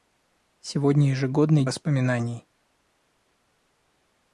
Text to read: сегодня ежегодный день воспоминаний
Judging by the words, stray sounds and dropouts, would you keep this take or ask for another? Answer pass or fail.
fail